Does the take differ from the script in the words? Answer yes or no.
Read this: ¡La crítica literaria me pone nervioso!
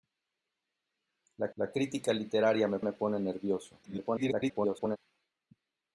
yes